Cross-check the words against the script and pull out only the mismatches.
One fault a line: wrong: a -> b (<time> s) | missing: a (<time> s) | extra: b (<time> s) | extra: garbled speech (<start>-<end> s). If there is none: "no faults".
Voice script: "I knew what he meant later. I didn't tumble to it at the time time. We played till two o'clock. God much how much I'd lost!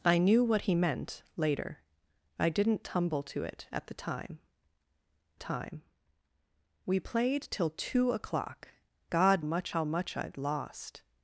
no faults